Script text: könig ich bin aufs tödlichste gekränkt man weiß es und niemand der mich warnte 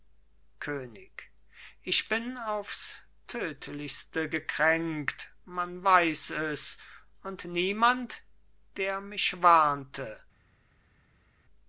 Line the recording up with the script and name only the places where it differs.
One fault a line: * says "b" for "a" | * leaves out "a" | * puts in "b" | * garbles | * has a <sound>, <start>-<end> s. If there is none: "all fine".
all fine